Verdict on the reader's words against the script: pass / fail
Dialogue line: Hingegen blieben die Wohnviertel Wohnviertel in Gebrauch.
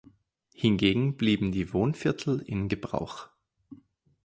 fail